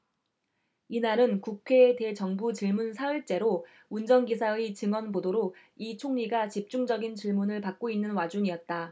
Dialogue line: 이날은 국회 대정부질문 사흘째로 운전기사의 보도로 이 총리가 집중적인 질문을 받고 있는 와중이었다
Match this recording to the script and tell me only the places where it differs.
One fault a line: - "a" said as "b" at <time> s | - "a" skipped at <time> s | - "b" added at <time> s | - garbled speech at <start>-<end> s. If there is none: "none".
- "증언" added at 4.7 s